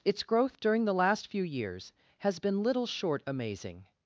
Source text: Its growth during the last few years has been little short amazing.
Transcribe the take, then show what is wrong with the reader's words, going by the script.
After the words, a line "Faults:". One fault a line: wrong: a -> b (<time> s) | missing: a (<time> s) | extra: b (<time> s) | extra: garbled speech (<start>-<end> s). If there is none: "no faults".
Its growth during the last few years has been little short amazing.
Faults:
no faults